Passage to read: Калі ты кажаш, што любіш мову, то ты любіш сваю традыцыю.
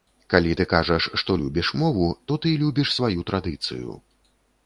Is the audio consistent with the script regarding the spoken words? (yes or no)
yes